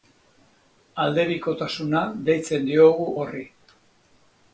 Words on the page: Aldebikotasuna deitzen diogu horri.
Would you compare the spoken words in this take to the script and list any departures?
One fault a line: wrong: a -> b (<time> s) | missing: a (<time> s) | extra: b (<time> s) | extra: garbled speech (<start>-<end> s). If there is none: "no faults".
no faults